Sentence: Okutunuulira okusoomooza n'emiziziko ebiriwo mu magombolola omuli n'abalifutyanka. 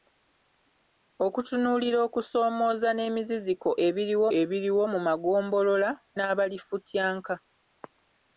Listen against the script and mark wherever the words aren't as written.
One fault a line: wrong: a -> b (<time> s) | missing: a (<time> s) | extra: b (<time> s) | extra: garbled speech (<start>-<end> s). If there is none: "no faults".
extra: ebiriwo (4.4 s)
missing: omuli (5.9 s)